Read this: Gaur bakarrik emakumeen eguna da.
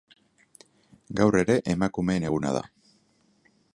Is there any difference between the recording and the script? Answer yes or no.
yes